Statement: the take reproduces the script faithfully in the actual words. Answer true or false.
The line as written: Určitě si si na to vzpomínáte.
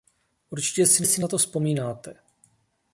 true